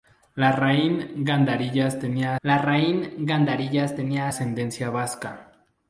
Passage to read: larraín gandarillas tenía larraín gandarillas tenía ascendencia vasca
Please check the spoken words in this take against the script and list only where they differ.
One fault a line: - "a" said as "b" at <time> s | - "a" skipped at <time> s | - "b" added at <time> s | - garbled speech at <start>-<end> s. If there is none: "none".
none